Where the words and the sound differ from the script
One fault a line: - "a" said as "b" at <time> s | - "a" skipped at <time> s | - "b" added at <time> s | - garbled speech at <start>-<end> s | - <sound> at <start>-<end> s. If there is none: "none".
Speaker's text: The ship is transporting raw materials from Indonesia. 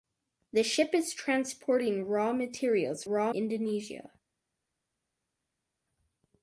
- "from" said as "raw" at 3.1 s